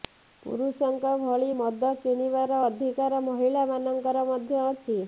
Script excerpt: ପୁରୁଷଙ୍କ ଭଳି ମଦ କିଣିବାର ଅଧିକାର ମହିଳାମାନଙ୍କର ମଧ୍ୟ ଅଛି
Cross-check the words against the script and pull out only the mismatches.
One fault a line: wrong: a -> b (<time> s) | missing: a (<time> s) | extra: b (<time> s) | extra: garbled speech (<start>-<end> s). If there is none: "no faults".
no faults